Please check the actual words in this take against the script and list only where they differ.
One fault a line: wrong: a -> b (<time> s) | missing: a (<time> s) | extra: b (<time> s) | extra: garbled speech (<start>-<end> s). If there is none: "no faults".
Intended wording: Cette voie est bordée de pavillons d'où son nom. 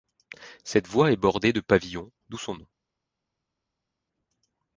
no faults